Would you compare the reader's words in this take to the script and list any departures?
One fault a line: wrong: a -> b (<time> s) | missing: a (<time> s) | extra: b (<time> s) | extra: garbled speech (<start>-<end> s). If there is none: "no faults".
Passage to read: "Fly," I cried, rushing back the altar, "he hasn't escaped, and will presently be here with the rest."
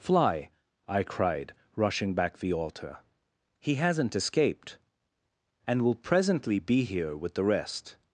no faults